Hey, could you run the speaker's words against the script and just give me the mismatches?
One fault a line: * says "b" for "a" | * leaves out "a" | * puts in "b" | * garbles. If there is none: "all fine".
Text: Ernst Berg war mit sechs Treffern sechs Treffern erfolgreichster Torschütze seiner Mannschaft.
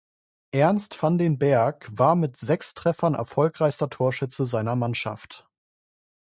* puts in "van den"
* leaves out "sechs Treffern"